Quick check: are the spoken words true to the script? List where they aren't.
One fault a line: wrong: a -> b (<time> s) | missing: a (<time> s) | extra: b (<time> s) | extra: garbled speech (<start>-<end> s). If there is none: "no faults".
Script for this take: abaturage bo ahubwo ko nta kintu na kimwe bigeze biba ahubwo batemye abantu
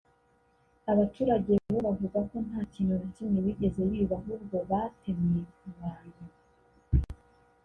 wrong: ahubwo -> bavuga (1.9 s)